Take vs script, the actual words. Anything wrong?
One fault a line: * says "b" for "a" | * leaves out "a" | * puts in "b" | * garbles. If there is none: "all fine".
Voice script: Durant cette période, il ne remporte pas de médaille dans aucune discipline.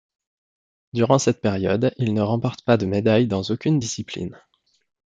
all fine